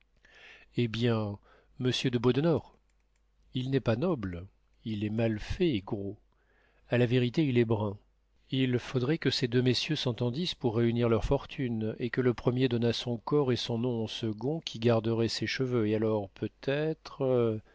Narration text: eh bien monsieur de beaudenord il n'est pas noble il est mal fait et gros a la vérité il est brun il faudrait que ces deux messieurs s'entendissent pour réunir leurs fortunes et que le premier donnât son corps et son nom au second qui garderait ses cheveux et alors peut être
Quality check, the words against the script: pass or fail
pass